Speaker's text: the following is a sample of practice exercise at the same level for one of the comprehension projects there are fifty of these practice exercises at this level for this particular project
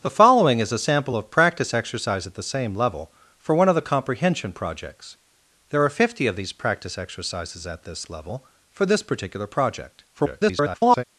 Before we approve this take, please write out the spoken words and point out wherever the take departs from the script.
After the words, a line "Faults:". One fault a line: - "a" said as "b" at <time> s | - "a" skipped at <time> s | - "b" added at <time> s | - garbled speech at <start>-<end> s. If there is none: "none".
the following is a sample of practice exercise at the same level for one of the comprehension projects there are fifty of these practice exercises at this level for this particular project [garbled]
Faults:
- garbled speech at 10.1-11.0 s